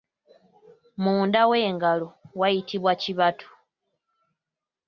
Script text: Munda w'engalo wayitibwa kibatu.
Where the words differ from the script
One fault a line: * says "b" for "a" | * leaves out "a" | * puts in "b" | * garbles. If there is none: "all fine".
all fine